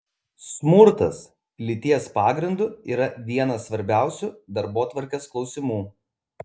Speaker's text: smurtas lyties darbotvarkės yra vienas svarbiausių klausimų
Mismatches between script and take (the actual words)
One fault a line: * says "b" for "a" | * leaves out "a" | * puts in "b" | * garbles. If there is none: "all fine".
* says "pagrindu" for "darbotvarkės"
* puts in "darbotvarkės"